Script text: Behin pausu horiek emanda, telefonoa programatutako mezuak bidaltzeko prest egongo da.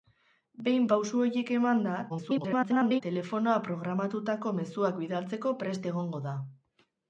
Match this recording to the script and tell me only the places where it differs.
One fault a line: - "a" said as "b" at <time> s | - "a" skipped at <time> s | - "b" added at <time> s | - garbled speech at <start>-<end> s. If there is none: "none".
- garbled speech at 2.1-3.0 s